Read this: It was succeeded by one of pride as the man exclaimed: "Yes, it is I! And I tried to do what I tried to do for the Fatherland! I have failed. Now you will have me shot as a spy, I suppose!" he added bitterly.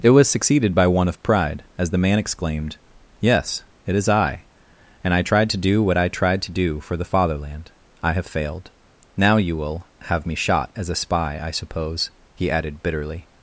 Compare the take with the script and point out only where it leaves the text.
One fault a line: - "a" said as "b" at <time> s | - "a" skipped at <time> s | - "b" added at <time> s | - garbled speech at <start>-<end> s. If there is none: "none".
none